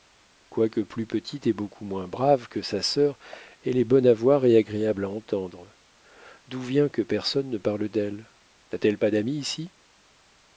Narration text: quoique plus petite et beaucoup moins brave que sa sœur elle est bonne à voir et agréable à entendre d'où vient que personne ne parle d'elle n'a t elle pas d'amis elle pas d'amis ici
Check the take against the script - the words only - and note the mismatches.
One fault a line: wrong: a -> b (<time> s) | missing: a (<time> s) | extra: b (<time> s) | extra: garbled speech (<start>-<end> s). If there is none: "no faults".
missing: elle pas d'amis (9.4 s)